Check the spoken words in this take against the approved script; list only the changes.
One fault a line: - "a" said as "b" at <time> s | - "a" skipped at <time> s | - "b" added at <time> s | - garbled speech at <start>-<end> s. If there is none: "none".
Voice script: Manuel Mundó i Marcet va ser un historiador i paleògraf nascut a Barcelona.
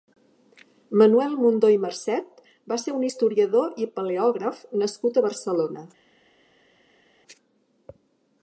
none